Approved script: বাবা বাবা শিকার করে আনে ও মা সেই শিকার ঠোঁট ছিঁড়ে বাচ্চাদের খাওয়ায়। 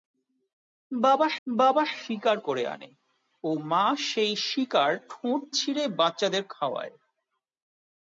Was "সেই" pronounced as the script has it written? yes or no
yes